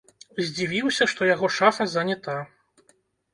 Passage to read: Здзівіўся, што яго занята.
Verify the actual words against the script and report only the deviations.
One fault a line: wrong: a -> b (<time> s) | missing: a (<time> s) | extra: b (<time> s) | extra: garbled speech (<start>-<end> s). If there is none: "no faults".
extra: шафа (1.6 s)